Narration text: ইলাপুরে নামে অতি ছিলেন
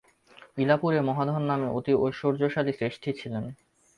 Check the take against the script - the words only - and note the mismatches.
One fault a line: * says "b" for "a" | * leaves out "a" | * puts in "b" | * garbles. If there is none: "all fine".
* puts in "মহাধন"
* puts in "ঐশ্বর্যশালী শ্রেষ্ঠী"